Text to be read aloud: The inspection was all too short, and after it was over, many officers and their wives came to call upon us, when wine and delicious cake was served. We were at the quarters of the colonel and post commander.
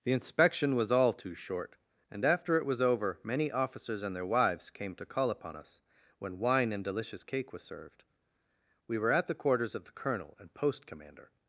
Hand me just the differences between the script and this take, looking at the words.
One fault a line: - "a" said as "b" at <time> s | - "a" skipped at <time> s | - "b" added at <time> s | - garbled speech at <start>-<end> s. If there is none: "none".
none